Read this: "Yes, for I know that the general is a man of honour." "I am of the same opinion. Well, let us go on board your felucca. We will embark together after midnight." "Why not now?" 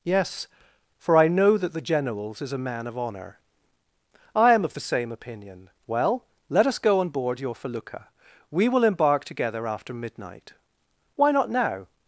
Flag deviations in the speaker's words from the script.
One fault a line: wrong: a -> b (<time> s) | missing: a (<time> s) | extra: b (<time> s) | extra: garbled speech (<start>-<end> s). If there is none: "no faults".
wrong: general -> generals (1.8 s)